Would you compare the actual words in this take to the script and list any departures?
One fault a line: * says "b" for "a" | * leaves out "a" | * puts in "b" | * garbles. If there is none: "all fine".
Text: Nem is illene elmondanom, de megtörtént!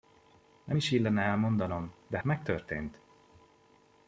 all fine